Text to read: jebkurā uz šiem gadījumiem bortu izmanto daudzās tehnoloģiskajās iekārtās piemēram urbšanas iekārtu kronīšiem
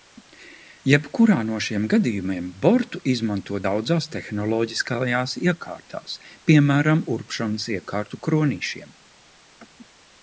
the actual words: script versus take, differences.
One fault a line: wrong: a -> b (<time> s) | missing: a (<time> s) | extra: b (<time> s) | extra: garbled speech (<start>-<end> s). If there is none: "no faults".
wrong: uz -> no (1.5 s)